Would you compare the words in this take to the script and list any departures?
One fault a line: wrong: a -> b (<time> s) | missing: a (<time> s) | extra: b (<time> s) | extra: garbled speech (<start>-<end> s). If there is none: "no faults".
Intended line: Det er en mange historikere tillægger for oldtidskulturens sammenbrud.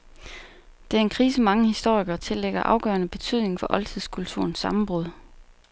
extra: krise (1.1 s)
extra: afgørende betydning (2.6 s)